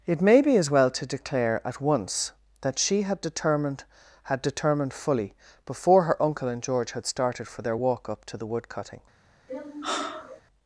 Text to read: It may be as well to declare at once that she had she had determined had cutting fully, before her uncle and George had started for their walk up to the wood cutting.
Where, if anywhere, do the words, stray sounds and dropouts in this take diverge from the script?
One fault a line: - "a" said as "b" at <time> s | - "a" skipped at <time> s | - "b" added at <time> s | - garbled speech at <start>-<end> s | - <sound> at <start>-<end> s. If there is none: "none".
- "she" said as "determined" at 3.2 s
- "had cutting" skipped at 4.9 s
- sigh at 9.5-10.4 s